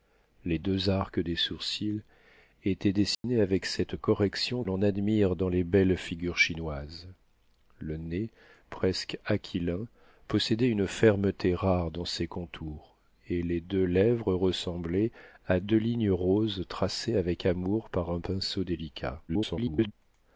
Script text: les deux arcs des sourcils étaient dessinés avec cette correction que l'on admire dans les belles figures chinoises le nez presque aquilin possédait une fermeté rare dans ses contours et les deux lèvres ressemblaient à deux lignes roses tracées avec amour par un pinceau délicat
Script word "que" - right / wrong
wrong